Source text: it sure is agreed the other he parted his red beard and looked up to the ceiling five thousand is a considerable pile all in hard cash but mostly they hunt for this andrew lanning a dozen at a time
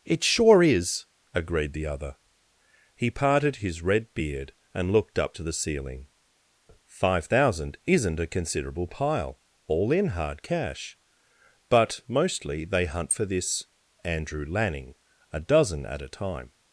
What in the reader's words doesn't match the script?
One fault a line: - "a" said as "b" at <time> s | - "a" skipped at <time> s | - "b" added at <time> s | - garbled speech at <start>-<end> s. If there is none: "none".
- "is" said as "isn't" at 7.8 s